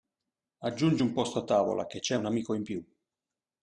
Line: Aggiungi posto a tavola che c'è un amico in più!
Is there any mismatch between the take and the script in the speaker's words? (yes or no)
yes